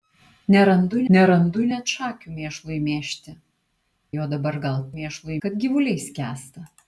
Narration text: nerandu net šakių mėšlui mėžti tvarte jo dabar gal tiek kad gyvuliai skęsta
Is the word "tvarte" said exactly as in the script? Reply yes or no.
no